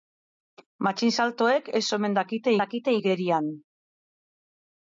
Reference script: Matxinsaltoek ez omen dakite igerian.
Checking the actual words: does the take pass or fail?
fail